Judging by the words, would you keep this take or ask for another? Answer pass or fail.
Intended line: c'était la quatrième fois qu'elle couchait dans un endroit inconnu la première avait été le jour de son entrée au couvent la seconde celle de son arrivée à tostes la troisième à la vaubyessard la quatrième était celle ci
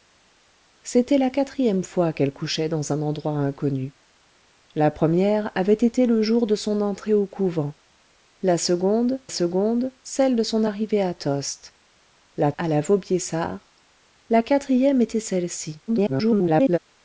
fail